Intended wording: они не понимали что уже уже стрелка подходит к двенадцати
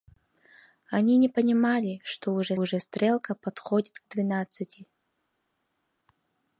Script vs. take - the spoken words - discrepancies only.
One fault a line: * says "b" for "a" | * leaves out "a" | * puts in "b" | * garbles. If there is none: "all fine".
all fine